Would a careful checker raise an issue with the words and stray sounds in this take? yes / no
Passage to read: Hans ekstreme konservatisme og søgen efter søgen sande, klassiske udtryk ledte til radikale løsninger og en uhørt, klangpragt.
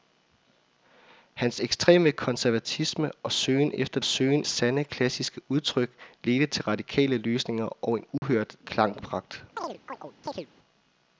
yes